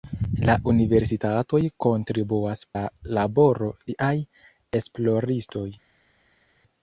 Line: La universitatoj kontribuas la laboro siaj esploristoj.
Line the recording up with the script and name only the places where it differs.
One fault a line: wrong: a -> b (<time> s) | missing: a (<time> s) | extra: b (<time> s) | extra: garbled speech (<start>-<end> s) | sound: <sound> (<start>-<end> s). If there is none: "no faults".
no faults